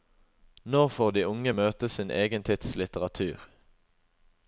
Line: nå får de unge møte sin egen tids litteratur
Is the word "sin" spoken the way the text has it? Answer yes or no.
yes